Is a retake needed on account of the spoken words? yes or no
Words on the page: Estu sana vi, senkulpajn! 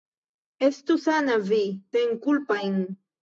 no